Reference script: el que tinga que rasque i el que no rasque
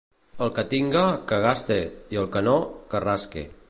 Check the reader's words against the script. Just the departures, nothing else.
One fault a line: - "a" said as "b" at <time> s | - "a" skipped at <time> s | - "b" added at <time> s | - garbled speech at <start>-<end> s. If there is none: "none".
- "rasque" said as "gaste" at 1.4 s
- "que" added at 2.9 s